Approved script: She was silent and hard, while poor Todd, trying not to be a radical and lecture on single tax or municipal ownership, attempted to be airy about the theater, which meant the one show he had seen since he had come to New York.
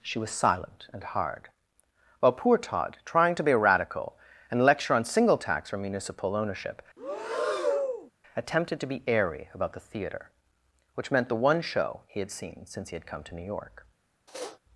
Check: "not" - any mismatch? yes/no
yes